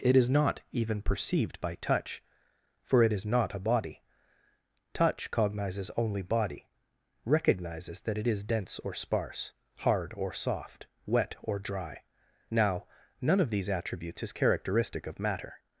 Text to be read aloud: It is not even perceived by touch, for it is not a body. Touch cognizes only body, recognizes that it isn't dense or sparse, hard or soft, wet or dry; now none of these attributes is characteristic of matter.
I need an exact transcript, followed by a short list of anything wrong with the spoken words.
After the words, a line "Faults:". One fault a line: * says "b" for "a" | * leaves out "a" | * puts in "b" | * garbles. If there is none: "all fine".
It is not even perceived by touch, for it is not a body. Touch cognizes only body, recognizes that it is dense or sparse, hard or soft, wet or dry; now none of these attributes is characteristic of matter.
Faults:
* says "is" for "isn't"